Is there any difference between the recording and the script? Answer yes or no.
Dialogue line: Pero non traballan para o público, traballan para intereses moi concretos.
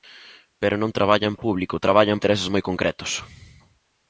yes